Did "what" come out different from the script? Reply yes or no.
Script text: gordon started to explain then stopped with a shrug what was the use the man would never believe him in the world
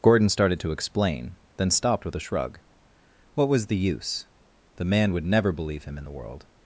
no